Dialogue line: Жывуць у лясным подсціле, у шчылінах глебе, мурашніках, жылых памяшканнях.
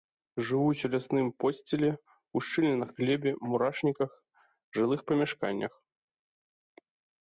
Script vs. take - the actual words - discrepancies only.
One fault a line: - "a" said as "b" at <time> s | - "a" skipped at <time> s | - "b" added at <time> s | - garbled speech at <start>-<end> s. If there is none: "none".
none